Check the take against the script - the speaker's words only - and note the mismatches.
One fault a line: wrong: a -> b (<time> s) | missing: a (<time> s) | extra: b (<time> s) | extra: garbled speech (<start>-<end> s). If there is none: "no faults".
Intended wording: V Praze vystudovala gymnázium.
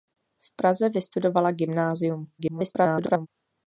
extra: garbled speech (2.4-3.3 s)